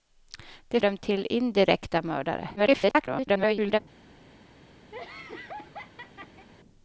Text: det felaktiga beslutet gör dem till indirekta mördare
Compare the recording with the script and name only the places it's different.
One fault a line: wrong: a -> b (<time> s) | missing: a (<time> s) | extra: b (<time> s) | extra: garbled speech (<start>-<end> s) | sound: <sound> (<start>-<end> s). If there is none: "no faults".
missing: felaktiga beslutet gör (0.8 s)
extra: garbled speech (2.6-3.8 s)
sound: laugh (4.9-6.5 s)